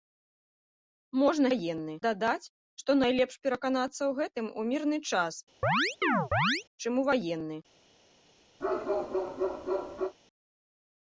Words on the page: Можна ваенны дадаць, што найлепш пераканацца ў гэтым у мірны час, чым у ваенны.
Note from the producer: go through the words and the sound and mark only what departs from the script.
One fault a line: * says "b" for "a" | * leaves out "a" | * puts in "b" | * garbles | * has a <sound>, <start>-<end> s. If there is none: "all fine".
* has a chirp, 5.6-6.6 s
* has a bark, 8.6-10.1 s